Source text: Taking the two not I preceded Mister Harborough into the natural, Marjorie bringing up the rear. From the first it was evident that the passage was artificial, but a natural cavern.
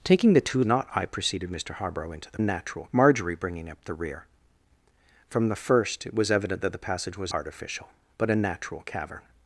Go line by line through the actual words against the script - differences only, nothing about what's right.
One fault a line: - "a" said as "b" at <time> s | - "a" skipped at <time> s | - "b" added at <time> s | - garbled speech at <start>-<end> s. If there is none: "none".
none